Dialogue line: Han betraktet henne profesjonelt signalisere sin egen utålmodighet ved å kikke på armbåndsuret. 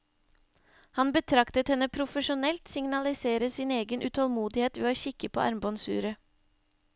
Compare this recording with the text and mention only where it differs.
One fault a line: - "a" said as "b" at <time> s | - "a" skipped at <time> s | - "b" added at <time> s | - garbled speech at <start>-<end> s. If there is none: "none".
none